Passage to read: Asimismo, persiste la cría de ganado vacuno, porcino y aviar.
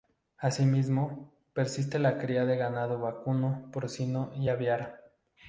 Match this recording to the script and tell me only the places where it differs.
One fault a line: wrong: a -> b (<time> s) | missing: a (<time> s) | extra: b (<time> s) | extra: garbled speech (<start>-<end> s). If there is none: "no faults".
no faults